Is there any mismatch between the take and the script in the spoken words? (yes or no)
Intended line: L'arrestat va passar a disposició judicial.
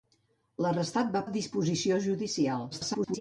yes